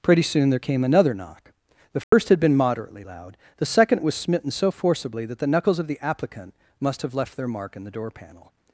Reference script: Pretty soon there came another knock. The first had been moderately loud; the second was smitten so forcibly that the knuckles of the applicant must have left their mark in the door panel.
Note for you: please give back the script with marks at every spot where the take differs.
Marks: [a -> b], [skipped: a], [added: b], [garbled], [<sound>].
Pretty soon there came another knock. The first [dropout] had been moderately loud; the second was smitten so forcibly that the knuckles of the applicant must have left their mark in the door panel.